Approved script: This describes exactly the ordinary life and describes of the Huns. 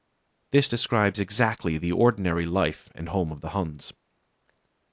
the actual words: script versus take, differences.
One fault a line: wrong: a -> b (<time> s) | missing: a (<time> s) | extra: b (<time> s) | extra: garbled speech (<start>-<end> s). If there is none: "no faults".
wrong: describes -> home (3.1 s)